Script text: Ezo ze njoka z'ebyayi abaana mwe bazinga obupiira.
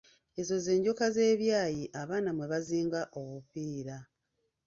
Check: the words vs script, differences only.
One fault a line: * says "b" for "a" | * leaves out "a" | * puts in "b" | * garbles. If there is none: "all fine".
all fine